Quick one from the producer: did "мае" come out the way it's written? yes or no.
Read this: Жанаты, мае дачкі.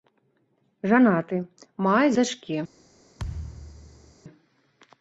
yes